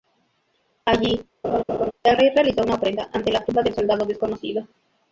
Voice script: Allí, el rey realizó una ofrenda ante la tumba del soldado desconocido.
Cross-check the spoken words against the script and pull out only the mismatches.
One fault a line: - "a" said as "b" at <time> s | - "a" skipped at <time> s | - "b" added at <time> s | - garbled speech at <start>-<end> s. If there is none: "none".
none